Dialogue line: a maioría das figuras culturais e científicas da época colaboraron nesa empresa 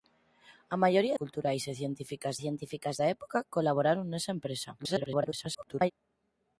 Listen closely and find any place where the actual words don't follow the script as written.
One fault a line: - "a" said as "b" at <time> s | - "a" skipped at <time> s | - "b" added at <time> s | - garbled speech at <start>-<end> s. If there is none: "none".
- "das figuras" skipped at 1.1 s
- "científicas" added at 2.4 s
- garbled speech at 4.8-5.9 s